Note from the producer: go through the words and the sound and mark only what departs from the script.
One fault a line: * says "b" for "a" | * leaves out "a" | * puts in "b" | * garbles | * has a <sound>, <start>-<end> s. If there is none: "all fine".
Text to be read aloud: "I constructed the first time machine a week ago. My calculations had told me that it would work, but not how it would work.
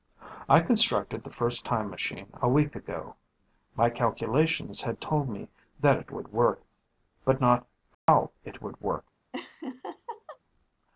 * has a dropout, 7.9-8.1 s
* has a laugh, 9.3-10.4 s